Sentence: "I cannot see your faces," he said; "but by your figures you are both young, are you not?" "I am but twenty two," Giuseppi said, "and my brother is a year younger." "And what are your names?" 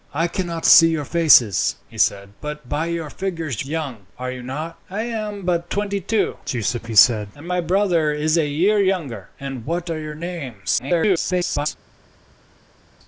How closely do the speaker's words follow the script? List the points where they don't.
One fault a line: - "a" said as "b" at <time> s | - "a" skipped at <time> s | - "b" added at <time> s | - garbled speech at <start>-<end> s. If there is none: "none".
- "you are both" skipped at 3.6 s
- garbled speech at 10.8-11.7 s